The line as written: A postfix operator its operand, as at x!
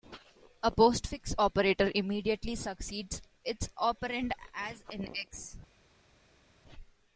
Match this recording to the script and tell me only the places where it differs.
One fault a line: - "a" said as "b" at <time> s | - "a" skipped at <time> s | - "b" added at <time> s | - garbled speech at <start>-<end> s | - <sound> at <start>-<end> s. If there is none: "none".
- "immediately succeeds" added at 1.9 s
- "at" said as "in" at 4.9 s